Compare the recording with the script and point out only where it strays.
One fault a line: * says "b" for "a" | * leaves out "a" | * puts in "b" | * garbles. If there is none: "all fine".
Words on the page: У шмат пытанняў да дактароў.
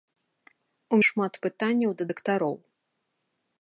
all fine